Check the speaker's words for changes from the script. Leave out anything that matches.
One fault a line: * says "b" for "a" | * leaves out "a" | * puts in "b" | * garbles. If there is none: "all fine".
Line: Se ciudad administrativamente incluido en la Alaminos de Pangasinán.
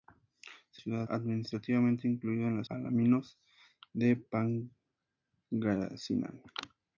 all fine